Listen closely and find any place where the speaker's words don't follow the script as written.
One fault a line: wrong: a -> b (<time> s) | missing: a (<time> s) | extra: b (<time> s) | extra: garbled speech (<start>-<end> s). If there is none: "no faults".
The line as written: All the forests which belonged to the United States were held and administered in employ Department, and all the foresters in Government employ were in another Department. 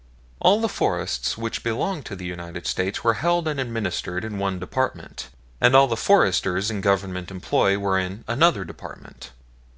wrong: employ -> one (4.4 s)